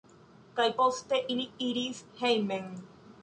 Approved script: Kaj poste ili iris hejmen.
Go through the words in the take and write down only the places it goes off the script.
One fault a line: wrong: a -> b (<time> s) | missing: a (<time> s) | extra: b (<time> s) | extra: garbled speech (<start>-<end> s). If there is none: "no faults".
no faults